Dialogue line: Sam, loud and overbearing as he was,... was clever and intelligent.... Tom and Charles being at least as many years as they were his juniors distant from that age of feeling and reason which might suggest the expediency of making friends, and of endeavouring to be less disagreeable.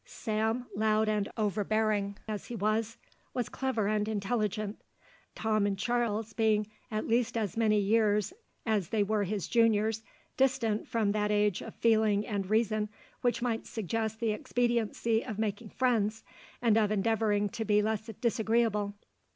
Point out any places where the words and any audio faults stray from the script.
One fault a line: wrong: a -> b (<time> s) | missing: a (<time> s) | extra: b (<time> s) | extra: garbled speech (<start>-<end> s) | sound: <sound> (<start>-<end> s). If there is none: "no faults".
no faults